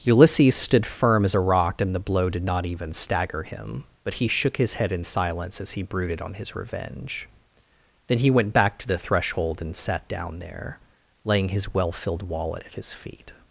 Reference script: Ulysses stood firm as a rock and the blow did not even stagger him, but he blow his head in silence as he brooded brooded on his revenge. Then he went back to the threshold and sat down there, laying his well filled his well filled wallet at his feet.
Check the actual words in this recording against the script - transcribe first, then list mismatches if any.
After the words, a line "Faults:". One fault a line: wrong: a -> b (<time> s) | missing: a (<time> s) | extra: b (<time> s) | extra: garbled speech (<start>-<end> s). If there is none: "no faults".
Ulysses stood firm as a rock and the blow did not even stagger him, but he shook his head in silence as he brooded on his revenge. Then he went back to the threshold and sat down there, laying his well filled wallet at his feet.
Faults:
wrong: blow -> shook (4.3 s)
missing: brooded (6.2 s)
missing: his well filled (12.2 s)